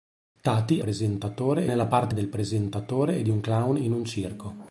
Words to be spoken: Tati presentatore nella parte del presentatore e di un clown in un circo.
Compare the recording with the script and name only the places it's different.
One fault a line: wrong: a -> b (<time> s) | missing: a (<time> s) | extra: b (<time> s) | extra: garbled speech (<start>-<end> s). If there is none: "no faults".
no faults